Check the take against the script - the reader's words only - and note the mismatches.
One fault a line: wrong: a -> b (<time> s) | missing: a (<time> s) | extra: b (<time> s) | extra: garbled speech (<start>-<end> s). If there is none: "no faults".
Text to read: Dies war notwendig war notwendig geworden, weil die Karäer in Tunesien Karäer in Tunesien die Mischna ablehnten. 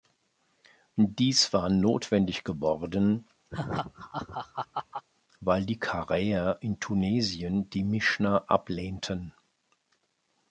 missing: war notwendig (2.4 s)
missing: Karäer in Tunesien (7.7 s)